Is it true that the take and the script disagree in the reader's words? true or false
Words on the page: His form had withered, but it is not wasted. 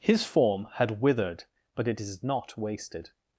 false